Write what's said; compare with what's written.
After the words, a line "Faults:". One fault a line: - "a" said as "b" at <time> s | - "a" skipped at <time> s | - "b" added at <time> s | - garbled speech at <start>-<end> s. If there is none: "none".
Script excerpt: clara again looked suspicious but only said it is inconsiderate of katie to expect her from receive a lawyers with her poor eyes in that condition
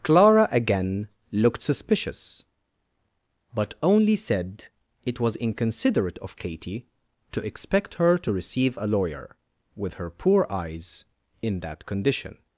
clara again looked suspicious but only said it was inconsiderate of katie to expect her to receive a lawyer with her poor eyes in that condition
Faults:
- "is" said as "was" at 5.2 s
- "from" said as "to" at 8.2 s
- "lawyers" said as "lawyer" at 8.9 s